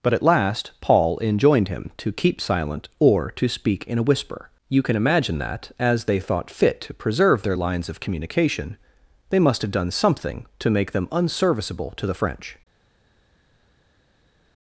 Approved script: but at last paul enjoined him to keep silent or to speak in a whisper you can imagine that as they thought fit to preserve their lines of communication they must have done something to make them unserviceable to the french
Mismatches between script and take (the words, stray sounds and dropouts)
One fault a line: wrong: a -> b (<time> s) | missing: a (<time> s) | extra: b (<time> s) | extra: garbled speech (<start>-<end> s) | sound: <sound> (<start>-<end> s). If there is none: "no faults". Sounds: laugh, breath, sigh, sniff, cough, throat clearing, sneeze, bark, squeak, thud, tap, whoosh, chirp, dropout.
no faults